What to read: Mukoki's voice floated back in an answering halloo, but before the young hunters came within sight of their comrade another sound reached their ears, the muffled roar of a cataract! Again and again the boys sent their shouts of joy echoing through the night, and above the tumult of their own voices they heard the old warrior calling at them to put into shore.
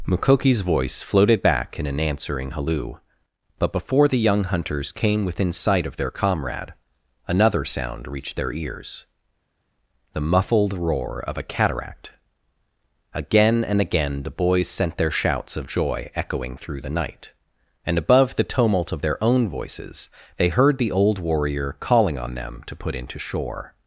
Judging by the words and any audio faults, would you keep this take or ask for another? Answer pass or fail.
fail